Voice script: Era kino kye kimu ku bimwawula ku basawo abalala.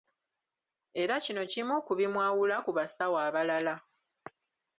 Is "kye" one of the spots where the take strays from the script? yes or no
yes